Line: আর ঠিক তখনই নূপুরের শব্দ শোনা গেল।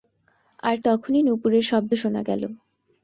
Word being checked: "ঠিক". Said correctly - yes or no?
no